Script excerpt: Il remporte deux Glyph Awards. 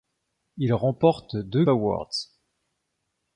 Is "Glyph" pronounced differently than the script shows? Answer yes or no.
yes